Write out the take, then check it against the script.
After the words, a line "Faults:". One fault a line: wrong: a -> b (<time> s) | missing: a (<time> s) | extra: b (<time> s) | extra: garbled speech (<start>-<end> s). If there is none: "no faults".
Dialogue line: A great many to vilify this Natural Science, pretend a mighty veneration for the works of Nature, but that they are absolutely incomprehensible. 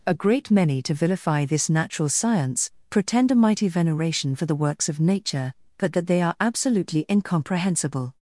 A great many to vilify this Natural Science, pretend a mighty veneration for the works of Nature, but that they are absolutely incomprehensible.
Faults:
no faults